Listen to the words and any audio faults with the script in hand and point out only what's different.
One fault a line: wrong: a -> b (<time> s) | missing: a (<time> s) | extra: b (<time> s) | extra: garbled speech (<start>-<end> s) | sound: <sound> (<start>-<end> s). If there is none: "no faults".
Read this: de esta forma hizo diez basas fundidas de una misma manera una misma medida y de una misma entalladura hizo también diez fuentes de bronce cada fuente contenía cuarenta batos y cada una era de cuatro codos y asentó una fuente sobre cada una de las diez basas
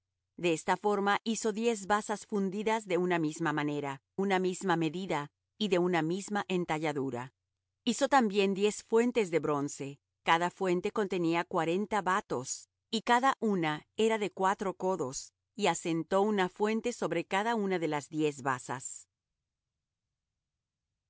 no faults